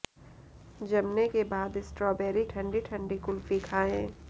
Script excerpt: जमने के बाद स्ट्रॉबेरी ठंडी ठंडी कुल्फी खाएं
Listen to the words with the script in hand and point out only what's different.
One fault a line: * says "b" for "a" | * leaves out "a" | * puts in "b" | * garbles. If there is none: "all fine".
all fine